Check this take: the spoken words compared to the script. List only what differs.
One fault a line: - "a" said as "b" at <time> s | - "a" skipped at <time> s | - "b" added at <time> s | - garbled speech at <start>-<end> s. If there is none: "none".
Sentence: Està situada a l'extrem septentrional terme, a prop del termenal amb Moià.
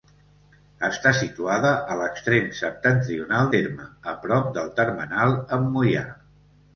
none